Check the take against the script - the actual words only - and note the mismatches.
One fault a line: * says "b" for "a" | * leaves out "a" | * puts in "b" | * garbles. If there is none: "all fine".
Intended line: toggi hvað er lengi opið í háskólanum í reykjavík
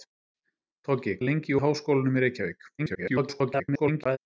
* leaves out "hvað"
* leaves out "opið"
* garbles